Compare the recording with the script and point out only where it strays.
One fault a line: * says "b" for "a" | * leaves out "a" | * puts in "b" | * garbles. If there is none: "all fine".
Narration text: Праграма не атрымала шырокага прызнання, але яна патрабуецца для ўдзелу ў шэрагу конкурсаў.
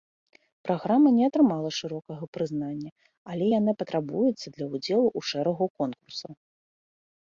all fine